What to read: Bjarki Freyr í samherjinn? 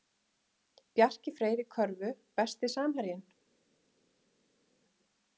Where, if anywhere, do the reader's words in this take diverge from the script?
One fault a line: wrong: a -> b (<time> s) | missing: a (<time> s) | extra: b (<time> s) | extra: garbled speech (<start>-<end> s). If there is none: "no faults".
extra: körfu Besti (1.8 s)